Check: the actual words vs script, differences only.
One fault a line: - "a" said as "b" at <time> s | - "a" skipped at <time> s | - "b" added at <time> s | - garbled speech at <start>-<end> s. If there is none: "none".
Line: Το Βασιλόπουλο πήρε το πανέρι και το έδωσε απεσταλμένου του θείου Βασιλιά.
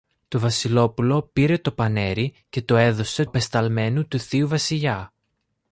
none